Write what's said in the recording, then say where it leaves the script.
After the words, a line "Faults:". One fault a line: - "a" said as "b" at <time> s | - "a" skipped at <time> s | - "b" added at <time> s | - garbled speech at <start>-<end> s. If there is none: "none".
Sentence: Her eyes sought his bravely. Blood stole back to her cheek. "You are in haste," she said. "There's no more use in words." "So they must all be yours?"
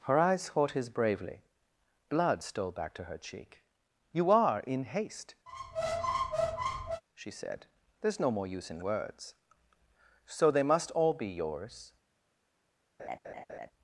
Her eyes sought his bravely. Blood stole back to her cheek. "You are in haste," she said. "There's no more use in words." "So they must all be yours?"
Faults:
none